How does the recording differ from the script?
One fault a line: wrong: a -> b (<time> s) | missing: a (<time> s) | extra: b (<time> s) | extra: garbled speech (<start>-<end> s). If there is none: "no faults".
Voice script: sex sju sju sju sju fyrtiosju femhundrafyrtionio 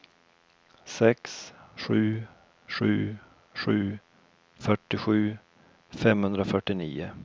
missing: sju (4.0 s)